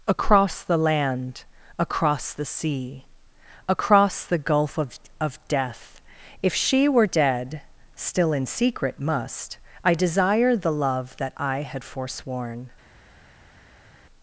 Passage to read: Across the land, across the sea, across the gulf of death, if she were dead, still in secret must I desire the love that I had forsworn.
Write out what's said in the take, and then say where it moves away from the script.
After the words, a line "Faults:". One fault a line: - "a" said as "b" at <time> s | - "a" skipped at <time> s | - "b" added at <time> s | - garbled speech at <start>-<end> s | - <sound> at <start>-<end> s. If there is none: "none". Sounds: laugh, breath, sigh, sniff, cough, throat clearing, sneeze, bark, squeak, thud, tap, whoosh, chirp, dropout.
Across the land, across the sea, across the gulf of of death, if she were dead, still in secret must I desire the love that I had forsworn.
Faults:
- "of" added at 5.2 s